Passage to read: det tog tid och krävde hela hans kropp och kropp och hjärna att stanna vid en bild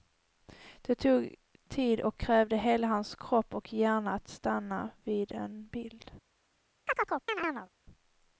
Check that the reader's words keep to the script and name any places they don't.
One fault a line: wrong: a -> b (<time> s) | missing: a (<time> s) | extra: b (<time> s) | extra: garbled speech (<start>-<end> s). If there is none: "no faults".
missing: kropp och (3.7 s)